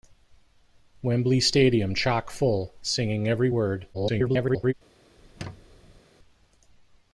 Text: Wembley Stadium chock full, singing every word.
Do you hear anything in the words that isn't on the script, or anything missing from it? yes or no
yes